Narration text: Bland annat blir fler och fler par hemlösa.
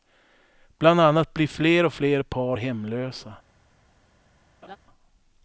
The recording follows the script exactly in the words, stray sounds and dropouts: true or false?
false